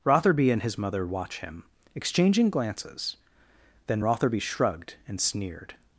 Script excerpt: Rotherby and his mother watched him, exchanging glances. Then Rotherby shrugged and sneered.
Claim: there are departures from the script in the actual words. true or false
true